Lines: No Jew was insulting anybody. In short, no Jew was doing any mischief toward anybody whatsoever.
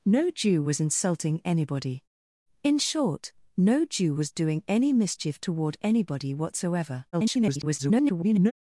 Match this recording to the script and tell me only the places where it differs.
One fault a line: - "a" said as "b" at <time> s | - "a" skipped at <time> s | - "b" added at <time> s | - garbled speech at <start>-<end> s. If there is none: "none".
- garbled speech at 7.1-8.5 s